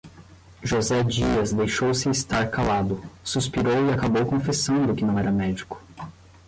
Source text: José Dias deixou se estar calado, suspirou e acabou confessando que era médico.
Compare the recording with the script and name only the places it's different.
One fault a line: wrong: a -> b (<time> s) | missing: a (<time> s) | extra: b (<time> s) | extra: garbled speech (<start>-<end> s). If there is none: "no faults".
extra: não (5.0 s)